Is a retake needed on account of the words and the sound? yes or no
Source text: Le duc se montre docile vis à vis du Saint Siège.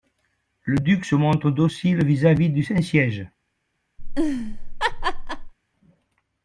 yes